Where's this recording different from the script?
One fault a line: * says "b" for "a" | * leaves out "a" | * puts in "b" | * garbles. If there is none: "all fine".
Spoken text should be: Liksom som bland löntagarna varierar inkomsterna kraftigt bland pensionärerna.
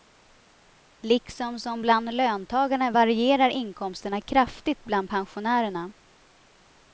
all fine